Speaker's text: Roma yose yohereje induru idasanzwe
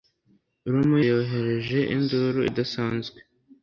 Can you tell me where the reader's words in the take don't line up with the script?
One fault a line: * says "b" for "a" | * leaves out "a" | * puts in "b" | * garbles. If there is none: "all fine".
* leaves out "yose"